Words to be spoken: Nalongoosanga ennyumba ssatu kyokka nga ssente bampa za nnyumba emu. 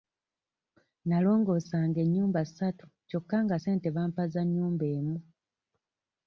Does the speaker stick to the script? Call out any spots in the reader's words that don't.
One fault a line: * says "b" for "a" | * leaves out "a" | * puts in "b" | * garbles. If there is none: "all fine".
all fine